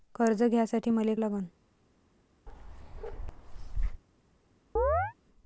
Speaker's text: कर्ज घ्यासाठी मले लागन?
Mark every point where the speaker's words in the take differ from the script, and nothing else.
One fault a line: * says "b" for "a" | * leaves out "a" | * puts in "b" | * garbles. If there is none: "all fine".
all fine